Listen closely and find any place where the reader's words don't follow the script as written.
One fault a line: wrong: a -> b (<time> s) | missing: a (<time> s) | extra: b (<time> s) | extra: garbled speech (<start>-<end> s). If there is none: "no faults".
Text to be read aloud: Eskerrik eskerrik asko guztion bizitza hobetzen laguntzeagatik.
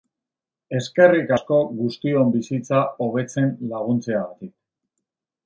missing: eskerrik (1.3 s)